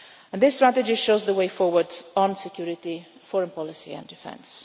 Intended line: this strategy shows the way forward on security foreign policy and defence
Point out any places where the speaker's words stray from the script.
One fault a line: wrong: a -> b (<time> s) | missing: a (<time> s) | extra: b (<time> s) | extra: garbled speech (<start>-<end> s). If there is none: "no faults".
no faults